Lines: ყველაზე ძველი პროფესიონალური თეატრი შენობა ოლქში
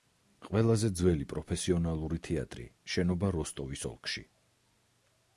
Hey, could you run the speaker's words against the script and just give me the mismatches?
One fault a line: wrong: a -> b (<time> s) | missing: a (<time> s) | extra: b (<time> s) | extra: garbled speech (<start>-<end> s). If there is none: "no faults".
extra: როსტოვის (3.4 s)